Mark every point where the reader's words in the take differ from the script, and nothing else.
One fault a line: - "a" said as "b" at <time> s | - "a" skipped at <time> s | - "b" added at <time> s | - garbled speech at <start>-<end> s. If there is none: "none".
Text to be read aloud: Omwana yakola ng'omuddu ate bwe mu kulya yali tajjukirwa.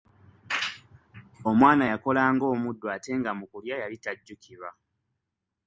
- "bwe" said as "nga" at 3.2 s